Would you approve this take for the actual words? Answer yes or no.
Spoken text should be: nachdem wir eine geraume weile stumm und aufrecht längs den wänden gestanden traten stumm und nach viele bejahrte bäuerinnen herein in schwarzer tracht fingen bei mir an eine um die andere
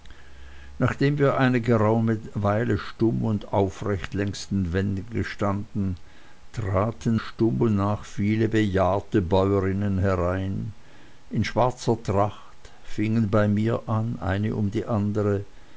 yes